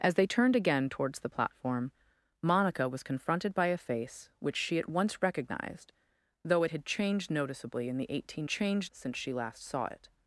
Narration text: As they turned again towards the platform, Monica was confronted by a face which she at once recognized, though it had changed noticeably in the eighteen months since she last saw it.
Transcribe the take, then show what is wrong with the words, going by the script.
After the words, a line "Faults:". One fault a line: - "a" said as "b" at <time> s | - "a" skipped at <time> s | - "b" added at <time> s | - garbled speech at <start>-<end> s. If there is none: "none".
As they turned again towards the platform, Monica was confronted by a face which she at once recognized, though it had changed noticeably in the eighteen changed since she last saw it.
Faults:
- "months" said as "changed" at 8.5 s